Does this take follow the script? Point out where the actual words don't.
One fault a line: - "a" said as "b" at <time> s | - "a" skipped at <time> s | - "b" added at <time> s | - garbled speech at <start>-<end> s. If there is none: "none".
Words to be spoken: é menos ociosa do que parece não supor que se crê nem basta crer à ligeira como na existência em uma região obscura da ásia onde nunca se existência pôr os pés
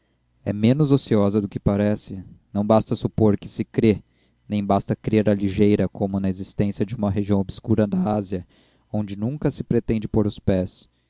- "basta" added at 2.6 s
- "em" said as "de" at 6.8 s
- "existência" said as "pretende" at 9.6 s